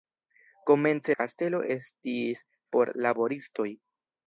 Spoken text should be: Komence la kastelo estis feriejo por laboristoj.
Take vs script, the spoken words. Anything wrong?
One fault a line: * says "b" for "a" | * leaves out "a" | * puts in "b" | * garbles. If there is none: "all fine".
* leaves out "la"
* leaves out "feriejo"